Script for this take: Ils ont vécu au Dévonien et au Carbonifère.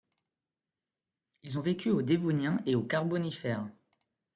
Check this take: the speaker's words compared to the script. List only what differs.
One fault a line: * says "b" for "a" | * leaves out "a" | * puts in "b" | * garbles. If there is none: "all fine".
all fine